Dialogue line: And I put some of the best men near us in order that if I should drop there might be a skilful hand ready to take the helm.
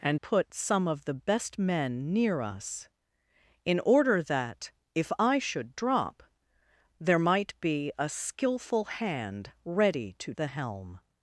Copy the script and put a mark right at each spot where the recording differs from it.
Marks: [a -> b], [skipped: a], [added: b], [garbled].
And [skipped: I] put some of the best men near us in order that if I should drop there might be a skilful hand ready to [skipped: take] the helm.